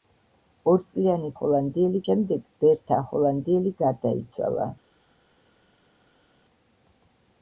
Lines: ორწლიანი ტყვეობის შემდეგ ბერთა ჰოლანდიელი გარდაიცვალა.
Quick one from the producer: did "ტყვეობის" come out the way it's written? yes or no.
no